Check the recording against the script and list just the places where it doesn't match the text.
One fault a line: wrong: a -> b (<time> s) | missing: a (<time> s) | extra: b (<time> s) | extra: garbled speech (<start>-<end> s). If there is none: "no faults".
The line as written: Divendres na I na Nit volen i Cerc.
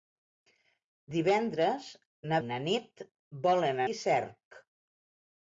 no faults